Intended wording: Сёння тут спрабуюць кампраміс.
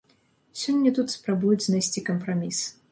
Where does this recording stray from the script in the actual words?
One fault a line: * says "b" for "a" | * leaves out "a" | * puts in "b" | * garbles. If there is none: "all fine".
* puts in "знайсці"